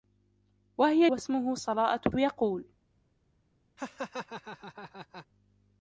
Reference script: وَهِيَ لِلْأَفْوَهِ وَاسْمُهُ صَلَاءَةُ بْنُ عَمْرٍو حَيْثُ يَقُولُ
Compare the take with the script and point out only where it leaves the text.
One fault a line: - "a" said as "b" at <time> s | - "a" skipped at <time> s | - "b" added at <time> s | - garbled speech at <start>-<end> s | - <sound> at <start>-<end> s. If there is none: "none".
- "لِلْأَفْوَهِ" skipped at 1.1 s
- "بْنُ عَمْرٍو حَيْثُ" skipped at 2.1 s
- laugh at 3.8-5.3 s